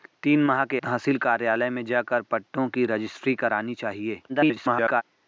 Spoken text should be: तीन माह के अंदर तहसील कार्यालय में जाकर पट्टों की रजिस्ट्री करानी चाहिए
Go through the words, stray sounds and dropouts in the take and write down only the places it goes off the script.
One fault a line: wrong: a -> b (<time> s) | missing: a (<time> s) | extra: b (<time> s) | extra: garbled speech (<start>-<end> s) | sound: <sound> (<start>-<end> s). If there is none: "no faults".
missing: अंदर (0.8 s)
extra: garbled speech (4.3-5.0 s)